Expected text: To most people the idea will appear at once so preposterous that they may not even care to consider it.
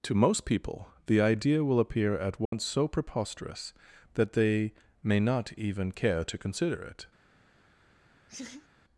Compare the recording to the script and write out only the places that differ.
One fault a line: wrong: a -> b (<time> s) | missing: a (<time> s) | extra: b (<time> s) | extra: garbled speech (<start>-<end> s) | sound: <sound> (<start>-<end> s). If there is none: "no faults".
sound: dropout (2.5-2.5 s)
sound: laugh (8.3-8.7 s)